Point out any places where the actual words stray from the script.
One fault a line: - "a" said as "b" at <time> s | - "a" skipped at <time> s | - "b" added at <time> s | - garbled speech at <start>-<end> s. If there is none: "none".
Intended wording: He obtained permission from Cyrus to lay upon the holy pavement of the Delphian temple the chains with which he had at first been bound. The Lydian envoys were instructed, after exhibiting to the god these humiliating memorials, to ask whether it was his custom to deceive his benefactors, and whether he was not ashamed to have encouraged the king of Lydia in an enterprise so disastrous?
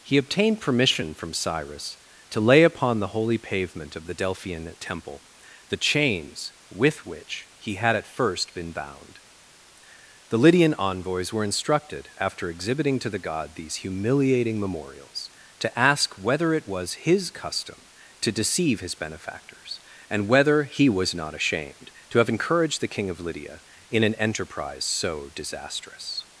none